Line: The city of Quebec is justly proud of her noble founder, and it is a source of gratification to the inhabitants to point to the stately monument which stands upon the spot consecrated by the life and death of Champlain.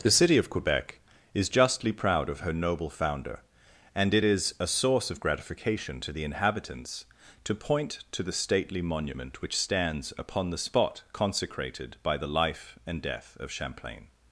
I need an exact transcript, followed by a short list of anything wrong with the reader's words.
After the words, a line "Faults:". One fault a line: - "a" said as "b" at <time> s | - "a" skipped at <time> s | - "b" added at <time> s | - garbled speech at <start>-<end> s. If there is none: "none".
The city of Quebec is justly proud of her noble founder, and it is a source of gratification to the inhabitants to point to the stately monument which stands upon the spot consecrated by the life and death of Champlain.
Faults:
none